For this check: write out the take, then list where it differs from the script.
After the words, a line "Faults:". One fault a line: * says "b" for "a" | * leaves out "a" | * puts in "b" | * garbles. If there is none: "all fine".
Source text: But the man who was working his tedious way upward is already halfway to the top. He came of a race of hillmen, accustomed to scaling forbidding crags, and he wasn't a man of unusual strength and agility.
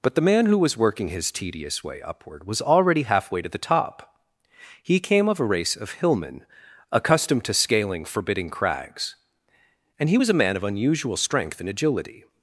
But the man who was working his tedious way upward was already halfway to the top. He came of a race of hillmen, accustomed to scaling forbidding crags, and he was a man of unusual strength and agility.
Faults:
* says "was" for "is"
* says "was" for "wasn't"